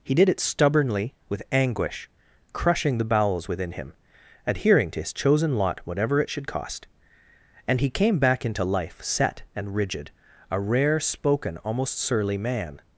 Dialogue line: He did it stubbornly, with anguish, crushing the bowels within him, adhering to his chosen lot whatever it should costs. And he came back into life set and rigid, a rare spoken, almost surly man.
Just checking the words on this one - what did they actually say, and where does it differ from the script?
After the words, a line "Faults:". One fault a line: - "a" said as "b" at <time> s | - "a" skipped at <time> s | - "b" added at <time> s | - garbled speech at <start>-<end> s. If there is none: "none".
He did it stubbornly, with anguish, crushing the bowels within him, adhering to his chosen lot whatever it should cost. And he came back into life set and rigid, a rare spoken, almost surly man.
Faults:
- "costs" said as "cost" at 6.5 s